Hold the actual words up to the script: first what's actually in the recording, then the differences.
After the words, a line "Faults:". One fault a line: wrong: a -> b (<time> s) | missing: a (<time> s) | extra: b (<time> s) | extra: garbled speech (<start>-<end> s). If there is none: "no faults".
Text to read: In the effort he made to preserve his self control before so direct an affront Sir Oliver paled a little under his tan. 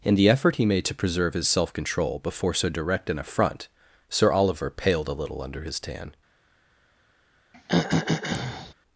In the effort he made to preserve his self control before so direct an affront Sir Oliver paled a little under his tan.
Faults:
no faults